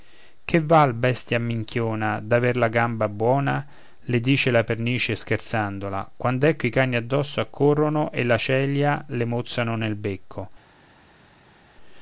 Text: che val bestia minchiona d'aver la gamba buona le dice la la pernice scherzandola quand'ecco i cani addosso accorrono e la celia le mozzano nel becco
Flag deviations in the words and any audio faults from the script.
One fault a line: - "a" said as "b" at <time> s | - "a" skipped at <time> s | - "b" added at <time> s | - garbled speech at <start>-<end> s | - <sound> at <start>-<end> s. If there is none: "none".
- "la" skipped at 4.6 s